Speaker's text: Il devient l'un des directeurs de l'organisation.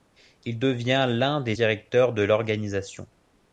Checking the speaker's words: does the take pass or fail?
pass